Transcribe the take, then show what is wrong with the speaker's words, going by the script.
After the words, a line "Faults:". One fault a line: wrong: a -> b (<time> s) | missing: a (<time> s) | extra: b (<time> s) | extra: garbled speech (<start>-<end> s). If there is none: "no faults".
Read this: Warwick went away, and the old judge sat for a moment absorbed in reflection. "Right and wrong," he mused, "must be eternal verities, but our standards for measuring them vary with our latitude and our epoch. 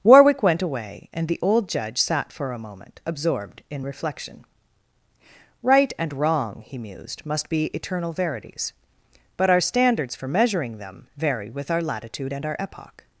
Warwick went away, and the old judge sat for a moment absorbed in reflection. "Right and wrong," he mused, "must be eternal verities, but our standards for measuring them vary with our latitude and our epoch.
Faults:
no faults